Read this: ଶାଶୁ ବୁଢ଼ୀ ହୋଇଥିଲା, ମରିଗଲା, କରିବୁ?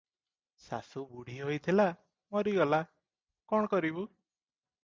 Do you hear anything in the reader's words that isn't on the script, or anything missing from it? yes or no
yes